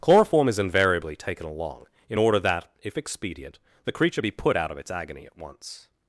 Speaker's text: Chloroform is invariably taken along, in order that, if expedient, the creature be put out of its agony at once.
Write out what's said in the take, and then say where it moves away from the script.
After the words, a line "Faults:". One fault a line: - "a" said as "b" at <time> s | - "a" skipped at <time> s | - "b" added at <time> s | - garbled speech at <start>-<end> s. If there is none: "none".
Chloroform is invariably taken along, in order that, if expedient, the creature be put out of its agony at once.
Faults:
none